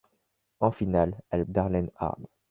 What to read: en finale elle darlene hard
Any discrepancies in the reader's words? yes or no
no